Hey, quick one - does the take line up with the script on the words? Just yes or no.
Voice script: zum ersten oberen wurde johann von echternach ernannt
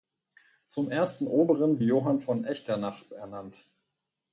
no